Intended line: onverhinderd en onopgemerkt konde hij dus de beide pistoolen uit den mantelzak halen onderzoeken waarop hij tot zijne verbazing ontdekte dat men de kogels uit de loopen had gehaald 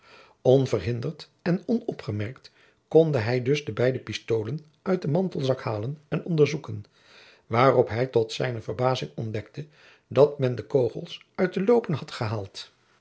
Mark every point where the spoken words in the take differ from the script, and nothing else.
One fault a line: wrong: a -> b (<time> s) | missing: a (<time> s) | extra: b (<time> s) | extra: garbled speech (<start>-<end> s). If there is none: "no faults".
extra: en (6.1 s)